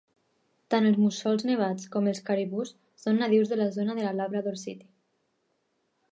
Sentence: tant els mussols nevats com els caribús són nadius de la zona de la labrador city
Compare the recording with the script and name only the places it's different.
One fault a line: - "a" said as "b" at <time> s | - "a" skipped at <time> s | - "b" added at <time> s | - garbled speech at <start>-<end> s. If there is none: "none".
none